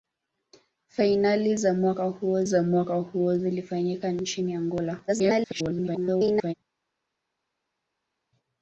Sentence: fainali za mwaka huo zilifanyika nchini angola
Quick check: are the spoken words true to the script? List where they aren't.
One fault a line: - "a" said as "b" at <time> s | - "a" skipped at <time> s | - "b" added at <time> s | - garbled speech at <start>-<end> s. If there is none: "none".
- "za mwaka huo" added at 2.4 s
- garbled speech at 5.1-6.5 s